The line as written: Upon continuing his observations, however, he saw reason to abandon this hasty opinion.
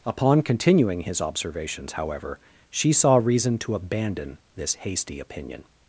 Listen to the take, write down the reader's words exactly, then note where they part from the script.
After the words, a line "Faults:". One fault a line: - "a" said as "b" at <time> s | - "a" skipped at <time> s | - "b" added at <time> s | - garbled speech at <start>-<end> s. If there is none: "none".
Upon continuing his observations, however, she saw reason to abandon this hasty opinion.
Faults:
- "he" said as "she" at 2.7 s